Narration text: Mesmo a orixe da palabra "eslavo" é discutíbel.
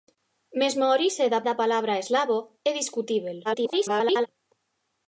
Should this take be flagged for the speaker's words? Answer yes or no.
yes